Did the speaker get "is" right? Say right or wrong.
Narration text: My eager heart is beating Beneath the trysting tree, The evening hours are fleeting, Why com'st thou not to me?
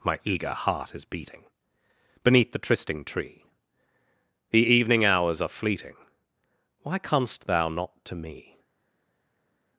right